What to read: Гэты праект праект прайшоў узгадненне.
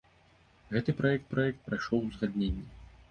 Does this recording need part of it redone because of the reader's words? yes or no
no